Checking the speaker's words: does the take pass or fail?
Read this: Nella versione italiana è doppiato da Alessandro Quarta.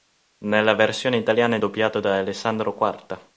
pass